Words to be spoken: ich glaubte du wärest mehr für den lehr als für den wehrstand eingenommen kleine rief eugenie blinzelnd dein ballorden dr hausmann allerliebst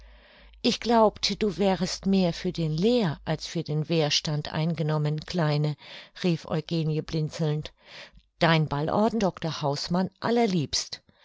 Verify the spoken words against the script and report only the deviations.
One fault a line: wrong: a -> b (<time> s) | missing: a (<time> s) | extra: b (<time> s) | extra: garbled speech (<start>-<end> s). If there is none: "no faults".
no faults